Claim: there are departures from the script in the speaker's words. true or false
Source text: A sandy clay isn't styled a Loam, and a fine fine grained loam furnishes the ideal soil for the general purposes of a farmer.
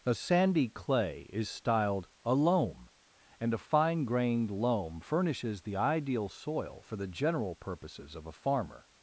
true